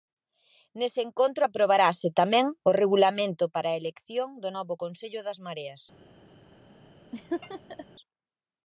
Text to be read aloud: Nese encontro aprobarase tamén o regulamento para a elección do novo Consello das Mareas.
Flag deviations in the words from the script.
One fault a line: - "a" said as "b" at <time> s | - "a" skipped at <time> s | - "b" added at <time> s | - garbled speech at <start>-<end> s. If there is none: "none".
none